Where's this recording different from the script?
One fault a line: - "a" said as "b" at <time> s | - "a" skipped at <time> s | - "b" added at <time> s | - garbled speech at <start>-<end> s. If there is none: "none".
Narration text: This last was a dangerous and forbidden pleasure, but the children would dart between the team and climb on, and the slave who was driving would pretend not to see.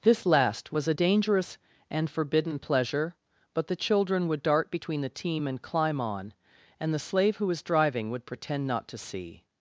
none